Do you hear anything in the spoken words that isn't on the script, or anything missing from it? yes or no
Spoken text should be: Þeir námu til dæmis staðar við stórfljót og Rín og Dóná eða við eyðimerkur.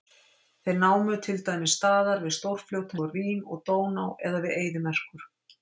no